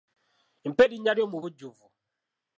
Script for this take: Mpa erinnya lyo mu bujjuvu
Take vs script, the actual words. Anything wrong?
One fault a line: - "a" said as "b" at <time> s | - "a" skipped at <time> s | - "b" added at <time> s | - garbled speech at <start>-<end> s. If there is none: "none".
none